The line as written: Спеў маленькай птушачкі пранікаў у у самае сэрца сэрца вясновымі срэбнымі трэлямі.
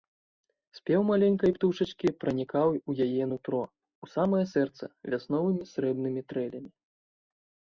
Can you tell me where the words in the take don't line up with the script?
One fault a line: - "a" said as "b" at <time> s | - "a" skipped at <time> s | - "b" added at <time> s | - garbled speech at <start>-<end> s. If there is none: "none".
- "яе нутро" added at 3.1 s
- "сэрца" skipped at 4.8 s